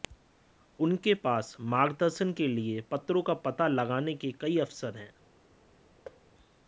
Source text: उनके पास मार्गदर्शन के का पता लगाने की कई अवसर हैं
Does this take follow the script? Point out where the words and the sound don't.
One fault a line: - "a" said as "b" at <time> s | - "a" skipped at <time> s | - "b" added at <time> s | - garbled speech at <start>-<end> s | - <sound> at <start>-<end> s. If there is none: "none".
- "लिए पत्रों" added at 2.5 s
- "की" said as "के" at 4.2 s
- thud at 6.0-6.2 s